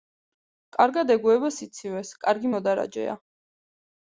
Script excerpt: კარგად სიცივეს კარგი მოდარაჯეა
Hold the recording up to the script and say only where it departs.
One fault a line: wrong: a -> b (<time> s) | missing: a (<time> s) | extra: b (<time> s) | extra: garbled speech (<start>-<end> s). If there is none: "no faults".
extra: ეგუება (1.2 s)